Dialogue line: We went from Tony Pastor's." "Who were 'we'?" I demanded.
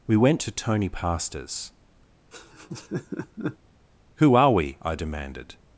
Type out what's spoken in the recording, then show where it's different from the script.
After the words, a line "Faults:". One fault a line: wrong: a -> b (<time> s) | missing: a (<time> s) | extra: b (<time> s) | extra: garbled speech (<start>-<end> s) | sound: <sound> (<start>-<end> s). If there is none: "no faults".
We went to Tony Pastor's." "Who are 'we'?" I demanded.
Faults:
wrong: from -> to (0.4 s)
sound: laugh (2.3-3.6 s)
wrong: were -> are (4.3 s)